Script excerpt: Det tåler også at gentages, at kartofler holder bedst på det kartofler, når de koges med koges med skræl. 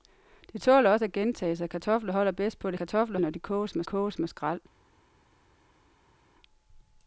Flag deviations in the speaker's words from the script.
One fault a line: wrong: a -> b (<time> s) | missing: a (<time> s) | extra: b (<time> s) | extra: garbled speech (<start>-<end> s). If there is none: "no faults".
no faults